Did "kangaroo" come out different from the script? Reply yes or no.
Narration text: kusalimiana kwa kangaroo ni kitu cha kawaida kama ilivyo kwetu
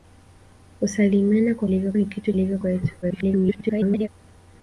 yes